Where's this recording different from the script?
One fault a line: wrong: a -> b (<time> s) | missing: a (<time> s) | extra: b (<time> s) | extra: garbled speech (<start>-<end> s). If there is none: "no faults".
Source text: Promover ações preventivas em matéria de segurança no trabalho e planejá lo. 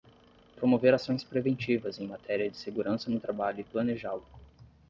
no faults